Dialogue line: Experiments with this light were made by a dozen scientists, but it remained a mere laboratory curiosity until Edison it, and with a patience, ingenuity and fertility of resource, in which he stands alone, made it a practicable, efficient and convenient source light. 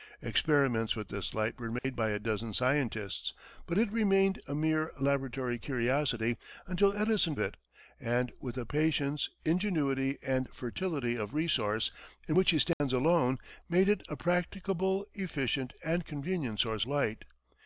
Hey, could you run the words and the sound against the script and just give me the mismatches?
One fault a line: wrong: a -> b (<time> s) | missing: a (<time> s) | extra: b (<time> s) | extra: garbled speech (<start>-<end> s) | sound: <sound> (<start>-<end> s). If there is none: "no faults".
sound: dropout (1.8-1.8 s)
sound: dropout (12.7-12.8 s)